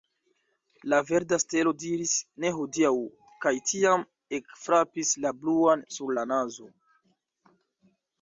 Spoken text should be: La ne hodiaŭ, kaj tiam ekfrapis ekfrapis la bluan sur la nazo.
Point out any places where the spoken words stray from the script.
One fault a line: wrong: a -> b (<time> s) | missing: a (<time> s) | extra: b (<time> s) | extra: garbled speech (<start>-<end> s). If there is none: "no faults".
extra: verda stelo diris (1.1 s)
missing: ekfrapis (5.1 s)